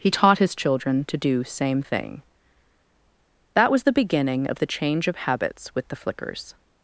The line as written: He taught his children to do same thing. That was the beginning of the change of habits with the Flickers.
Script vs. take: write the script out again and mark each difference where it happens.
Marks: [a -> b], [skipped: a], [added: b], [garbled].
He taught his children to do same thing. That was the beginning of the change of habits with the Flickers.